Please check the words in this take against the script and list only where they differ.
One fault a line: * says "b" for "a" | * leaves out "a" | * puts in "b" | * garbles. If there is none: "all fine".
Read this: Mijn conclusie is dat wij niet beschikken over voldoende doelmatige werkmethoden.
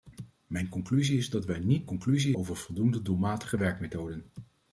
* says "conclusie" for "beschikken"